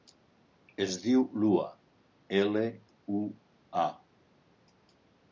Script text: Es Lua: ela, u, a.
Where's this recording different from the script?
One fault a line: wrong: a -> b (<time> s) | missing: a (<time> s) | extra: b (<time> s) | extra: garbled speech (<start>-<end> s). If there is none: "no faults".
extra: diu (1.0 s)